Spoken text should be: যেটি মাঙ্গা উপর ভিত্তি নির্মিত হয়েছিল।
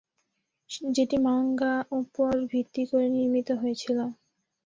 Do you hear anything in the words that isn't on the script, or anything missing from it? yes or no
yes